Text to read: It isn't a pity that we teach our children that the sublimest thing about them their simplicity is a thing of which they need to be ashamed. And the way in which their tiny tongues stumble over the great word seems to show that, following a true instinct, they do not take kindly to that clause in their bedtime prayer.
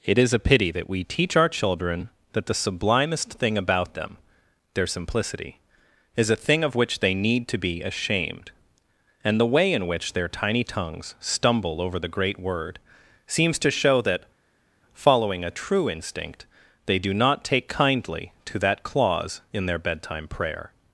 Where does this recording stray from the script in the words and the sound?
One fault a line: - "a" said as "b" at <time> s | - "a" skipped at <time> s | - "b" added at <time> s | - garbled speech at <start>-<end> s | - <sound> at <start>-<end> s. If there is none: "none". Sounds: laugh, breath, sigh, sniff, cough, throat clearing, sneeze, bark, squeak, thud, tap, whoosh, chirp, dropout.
- "isn't" said as "is" at 0.2 s